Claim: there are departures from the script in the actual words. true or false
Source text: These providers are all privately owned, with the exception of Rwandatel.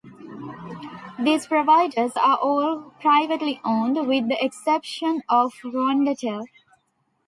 false